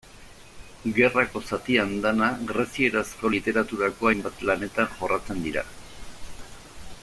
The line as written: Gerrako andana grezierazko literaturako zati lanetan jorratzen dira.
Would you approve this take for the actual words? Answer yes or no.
no